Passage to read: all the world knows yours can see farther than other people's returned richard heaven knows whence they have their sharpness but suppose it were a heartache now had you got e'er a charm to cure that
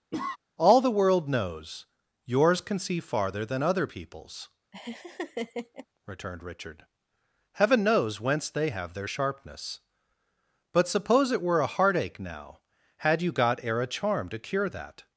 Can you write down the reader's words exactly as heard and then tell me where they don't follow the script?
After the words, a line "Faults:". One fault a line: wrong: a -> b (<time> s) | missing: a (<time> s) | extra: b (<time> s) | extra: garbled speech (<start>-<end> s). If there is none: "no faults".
all the world knows yours can see farther than other people's returned richard heaven knows whence they have their sharpness but suppose it were a heartache now had you got e'er a charm to cure that
Faults:
no faults